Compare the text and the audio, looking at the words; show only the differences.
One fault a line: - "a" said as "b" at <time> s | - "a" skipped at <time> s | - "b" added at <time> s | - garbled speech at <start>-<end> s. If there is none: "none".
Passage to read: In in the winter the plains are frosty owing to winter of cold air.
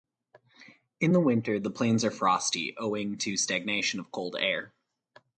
- "in" skipped at 1.1 s
- "winter" said as "stagnation" at 3.4 s